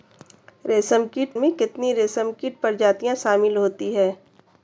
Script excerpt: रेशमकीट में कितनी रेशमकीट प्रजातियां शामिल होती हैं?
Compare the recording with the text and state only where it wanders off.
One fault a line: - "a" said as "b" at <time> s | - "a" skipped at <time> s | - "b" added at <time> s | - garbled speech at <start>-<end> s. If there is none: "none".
none